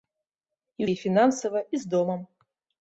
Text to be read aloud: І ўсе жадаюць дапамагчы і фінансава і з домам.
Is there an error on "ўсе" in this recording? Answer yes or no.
yes